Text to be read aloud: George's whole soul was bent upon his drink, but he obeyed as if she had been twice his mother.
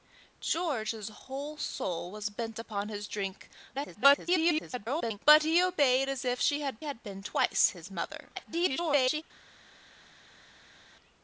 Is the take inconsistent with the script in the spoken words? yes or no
yes